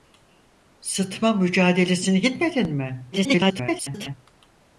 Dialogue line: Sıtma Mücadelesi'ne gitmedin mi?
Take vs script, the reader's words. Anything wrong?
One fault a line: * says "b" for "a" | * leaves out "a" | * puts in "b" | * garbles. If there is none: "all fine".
* garbles